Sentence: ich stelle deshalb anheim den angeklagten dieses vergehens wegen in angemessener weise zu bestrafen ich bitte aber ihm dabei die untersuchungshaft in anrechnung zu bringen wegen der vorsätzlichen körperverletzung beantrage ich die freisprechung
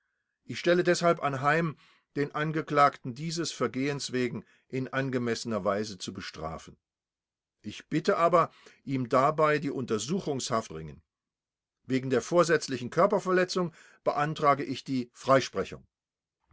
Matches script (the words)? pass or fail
fail